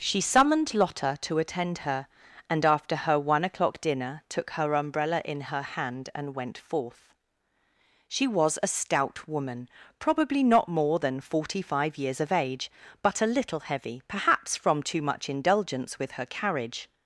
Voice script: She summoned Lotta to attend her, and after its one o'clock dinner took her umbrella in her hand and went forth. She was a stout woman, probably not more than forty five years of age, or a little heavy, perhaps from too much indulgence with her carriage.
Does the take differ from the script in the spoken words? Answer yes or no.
yes